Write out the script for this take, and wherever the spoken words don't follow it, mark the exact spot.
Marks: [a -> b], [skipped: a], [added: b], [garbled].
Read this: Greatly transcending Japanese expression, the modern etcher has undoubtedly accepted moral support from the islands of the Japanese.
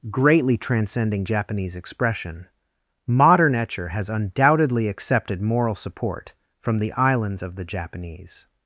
Greatly transcending Japanese expression, [skipped: the] modern etcher has undoubtedly accepted moral support from the islands of the Japanese.